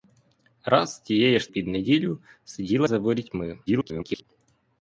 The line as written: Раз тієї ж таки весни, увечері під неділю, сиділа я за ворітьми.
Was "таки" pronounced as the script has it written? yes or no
no